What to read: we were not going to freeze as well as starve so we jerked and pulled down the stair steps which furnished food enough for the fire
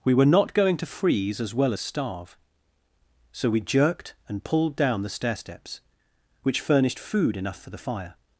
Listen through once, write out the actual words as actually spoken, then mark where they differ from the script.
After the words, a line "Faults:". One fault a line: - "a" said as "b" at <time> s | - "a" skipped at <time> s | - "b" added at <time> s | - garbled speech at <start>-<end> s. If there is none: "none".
we were not going to freeze as well as starve so we jerked and pulled down the stair steps which furnished food enough for the fire
Faults:
none